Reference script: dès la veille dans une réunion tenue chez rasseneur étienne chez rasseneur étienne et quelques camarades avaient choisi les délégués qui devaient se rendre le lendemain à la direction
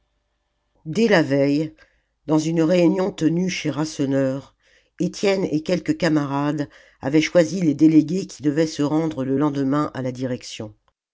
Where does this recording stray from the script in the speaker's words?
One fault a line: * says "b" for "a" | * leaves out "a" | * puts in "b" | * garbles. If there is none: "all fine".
* leaves out "chez rasseneur étienne"